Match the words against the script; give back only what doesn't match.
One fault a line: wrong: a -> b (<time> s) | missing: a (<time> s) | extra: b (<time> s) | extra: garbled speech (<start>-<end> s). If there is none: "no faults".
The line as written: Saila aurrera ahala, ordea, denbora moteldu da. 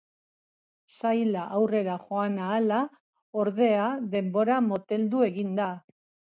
extra: joan (2.0 s)
extra: egin (5.3 s)